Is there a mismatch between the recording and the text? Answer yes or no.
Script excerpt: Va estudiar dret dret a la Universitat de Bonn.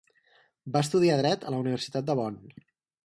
yes